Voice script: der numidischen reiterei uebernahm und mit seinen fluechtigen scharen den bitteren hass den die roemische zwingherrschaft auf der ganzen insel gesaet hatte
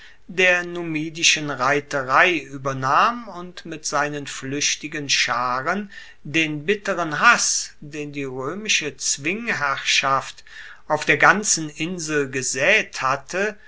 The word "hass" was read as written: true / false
true